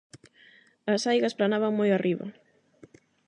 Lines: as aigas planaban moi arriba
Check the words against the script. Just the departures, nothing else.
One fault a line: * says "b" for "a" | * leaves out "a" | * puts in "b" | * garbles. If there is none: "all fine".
all fine